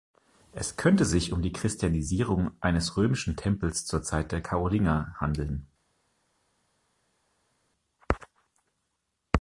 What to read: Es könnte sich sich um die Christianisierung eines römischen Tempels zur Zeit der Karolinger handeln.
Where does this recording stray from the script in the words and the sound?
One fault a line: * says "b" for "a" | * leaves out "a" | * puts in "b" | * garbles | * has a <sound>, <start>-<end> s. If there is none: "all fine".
* leaves out "sich"